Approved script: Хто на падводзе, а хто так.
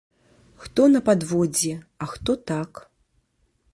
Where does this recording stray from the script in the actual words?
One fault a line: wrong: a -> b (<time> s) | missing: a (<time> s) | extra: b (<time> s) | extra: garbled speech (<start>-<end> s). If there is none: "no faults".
no faults